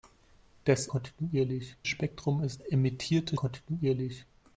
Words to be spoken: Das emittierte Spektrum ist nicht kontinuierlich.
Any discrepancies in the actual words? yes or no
yes